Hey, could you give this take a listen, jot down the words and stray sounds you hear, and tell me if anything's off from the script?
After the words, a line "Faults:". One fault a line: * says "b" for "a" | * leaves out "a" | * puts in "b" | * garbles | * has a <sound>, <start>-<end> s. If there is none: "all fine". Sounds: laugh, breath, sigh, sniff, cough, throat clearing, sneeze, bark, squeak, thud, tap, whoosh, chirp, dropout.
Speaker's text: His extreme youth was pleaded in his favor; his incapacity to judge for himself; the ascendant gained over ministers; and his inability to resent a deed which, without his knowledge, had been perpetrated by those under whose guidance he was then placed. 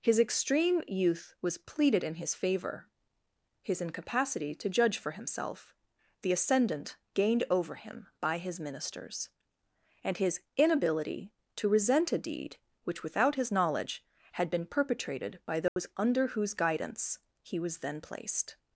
His extreme youth was pleaded in his favor; his incapacity to judge for himself; the ascendant gained over him by his ministers; and his inability to resent a deed which, without his knowledge, had been perpetrated by those under whose guidance he was then placed.
Faults:
* puts in "him by his"
* has a dropout, 15.7-15.8 s